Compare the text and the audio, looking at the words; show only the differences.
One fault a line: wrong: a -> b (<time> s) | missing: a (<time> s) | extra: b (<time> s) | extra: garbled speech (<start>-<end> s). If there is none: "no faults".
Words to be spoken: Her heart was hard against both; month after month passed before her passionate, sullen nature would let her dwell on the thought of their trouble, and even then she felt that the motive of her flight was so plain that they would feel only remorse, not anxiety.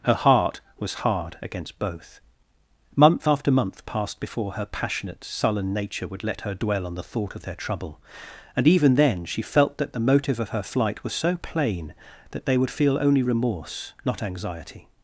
no faults